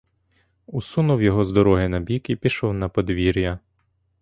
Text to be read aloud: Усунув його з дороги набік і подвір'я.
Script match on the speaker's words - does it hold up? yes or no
no